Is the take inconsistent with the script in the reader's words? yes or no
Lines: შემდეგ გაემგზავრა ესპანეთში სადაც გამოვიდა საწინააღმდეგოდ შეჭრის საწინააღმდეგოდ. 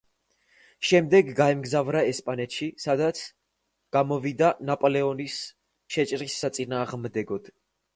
yes